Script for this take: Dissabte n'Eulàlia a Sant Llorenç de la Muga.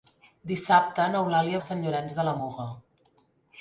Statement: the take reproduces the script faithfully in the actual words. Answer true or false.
true